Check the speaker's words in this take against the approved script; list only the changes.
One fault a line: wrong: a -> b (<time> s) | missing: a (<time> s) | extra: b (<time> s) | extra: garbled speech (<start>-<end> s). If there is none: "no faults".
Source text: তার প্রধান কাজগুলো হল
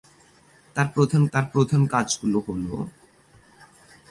extra: তার প্রধান (1.3 s)